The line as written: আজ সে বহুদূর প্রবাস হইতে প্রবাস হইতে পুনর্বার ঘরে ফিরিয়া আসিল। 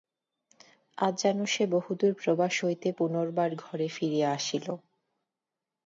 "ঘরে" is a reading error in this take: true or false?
false